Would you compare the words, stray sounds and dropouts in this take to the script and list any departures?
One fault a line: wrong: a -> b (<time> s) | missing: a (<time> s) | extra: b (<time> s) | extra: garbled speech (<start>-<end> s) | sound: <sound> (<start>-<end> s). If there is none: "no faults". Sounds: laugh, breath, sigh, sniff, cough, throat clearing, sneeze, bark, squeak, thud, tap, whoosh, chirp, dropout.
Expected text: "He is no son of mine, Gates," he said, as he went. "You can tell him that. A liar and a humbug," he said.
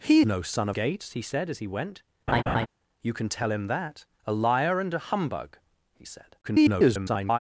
missing: is (0.2 s)
missing: mine (0.8 s)
sound: laugh (2.3-2.7 s)
extra: garbled speech (6.4-7.4 s)